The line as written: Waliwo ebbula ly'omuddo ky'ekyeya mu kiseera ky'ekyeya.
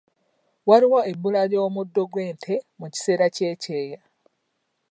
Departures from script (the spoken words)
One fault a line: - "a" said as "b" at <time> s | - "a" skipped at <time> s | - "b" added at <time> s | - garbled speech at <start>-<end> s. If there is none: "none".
- "ky'ekyeya" said as "gw'ente" at 2.1 s